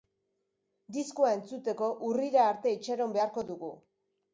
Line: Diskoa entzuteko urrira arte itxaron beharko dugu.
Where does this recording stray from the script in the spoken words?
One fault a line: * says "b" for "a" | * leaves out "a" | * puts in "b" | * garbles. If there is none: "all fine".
all fine